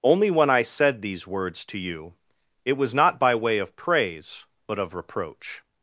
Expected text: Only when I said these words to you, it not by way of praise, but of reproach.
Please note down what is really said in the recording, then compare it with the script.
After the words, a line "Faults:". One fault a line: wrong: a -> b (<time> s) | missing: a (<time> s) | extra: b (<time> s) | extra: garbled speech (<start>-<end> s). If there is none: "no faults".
Only when I said these words to you, it was not by way of praise, but of reproach.
Faults:
extra: was (2.7 s)